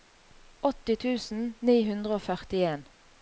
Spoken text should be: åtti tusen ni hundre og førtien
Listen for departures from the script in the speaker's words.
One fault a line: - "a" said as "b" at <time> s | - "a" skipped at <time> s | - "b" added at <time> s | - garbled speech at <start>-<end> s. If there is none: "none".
none